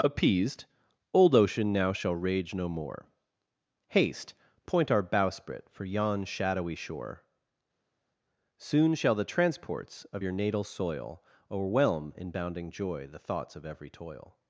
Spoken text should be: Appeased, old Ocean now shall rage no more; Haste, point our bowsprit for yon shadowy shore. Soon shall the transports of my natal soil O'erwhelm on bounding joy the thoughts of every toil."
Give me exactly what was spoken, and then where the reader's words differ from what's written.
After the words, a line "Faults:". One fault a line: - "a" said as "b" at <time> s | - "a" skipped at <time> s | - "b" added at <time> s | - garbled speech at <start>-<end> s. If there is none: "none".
Appeased, old Ocean now shall rage no more; Haste, point our bowsprit for yon shadowy shore. Soon shall the transports of your natal soil O'erwhelm in bounding joy the thoughts of every toil."
Faults:
- "my" said as "your" at 10.2 s
- "on" said as "in" at 12.2 s